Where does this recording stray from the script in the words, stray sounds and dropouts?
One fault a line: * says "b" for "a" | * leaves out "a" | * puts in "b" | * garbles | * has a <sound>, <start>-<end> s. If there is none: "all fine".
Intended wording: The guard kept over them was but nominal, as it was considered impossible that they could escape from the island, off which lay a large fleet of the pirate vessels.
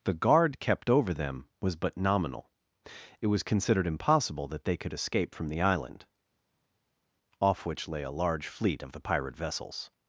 * leaves out "as"